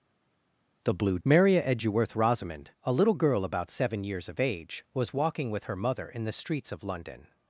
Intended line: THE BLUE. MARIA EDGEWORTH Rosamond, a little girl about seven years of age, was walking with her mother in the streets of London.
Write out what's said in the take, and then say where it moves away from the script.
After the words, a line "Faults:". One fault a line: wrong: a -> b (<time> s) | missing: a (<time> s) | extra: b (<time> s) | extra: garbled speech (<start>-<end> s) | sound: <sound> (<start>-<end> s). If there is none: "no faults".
THE BLUE. MARIA EDGEWORTH Rosamond, a little girl about seven years of age, was walking with her mother in the streets of London.
Faults:
no faults